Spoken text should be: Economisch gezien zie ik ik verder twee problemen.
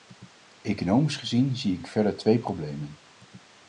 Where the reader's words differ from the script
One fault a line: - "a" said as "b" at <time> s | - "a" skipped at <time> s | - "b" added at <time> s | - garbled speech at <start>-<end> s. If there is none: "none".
none